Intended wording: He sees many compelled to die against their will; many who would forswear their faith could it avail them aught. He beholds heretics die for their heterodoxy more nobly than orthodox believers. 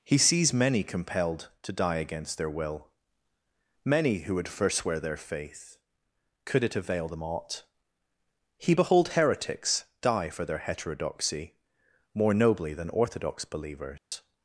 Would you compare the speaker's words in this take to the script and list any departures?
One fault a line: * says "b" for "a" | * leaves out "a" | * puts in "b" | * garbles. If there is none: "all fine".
* says "behold" for "beholds"